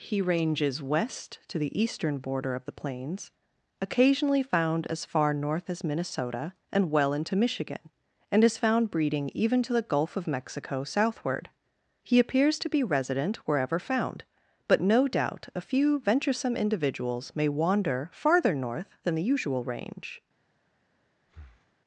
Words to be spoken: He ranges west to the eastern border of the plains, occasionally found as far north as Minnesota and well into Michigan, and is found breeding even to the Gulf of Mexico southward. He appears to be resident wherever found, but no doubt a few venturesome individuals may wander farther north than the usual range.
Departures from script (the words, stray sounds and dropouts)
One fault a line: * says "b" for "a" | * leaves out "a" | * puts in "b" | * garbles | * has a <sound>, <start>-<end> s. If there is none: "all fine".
* has a breath, 21.3-21.8 s